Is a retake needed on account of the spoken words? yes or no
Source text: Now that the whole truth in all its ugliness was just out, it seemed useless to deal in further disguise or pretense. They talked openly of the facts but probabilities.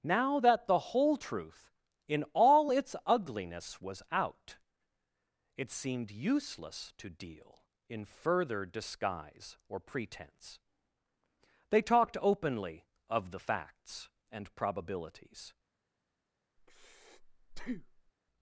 yes